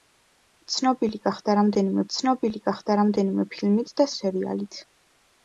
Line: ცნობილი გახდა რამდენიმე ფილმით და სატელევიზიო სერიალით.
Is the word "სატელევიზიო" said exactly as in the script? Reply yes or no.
no